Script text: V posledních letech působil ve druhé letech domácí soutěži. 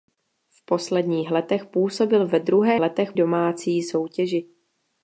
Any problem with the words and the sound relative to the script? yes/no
no